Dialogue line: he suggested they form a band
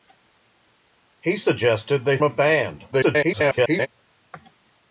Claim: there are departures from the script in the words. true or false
true